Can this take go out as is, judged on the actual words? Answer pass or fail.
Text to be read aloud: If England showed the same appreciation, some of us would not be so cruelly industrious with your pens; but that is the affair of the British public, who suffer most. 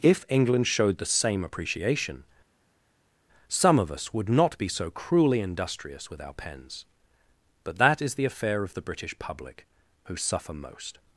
fail